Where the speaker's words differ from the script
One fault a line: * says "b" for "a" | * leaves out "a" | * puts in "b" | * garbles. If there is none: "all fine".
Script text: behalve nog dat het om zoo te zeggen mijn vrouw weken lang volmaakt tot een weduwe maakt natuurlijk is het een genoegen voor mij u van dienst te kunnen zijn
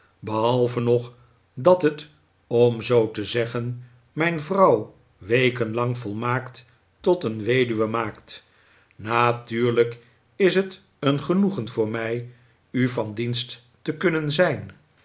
all fine